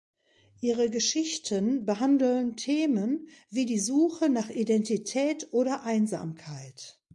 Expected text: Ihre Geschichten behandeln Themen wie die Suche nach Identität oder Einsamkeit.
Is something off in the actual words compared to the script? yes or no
no